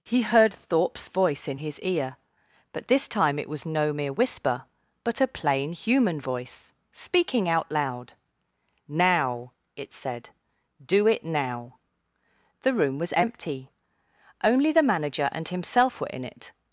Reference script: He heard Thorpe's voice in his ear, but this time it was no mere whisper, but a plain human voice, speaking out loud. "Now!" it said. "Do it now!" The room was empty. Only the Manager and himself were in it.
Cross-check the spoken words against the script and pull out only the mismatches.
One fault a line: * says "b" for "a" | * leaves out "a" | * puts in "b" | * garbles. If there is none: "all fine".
all fine